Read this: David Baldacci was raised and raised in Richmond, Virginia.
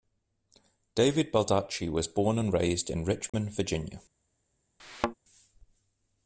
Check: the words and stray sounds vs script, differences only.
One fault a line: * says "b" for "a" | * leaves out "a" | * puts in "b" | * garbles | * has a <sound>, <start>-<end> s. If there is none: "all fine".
* says "born" for "raised"
* has a dropout, 3.3-3.3 s
* has a thud, 4.8-5.1 s